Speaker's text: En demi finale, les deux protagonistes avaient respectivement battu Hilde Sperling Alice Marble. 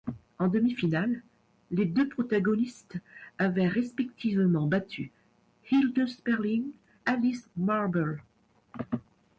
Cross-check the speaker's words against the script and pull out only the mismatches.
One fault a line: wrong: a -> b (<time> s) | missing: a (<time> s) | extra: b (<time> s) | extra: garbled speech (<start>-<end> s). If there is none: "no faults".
no faults